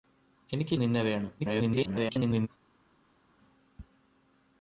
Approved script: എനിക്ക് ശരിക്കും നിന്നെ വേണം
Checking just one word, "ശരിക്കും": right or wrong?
wrong